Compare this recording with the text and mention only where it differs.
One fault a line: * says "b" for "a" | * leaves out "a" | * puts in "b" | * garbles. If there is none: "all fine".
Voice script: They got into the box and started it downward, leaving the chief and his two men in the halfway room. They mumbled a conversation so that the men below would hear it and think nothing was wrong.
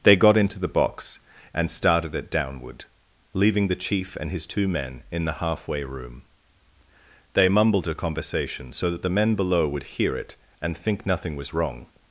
all fine